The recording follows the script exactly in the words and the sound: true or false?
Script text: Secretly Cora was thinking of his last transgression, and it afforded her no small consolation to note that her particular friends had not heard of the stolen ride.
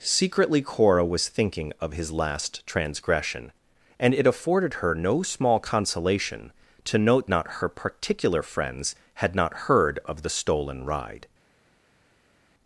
false